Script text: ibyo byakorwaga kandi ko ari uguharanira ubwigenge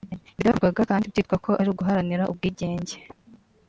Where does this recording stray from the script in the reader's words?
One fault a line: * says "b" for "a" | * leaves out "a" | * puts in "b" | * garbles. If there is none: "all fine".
* puts in "byitwa"